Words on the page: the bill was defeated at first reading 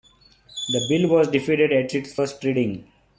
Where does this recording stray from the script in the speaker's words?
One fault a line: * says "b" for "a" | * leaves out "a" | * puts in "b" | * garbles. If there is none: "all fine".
* puts in "its"